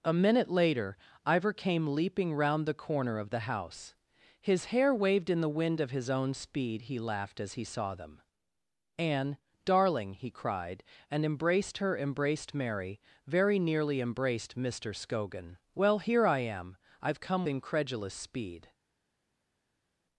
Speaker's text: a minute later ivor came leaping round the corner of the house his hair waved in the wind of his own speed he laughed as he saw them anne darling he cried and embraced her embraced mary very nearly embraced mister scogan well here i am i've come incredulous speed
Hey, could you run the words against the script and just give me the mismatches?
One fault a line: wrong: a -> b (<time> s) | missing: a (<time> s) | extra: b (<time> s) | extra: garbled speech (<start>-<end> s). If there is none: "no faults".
no faults